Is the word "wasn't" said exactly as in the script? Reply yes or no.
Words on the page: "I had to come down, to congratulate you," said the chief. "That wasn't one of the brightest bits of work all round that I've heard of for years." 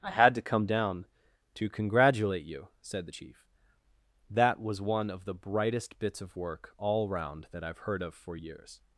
no